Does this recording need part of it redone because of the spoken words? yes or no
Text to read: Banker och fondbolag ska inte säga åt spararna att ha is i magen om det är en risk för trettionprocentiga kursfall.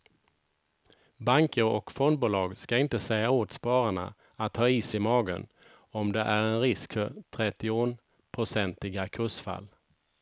no